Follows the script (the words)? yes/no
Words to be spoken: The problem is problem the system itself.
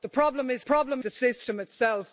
yes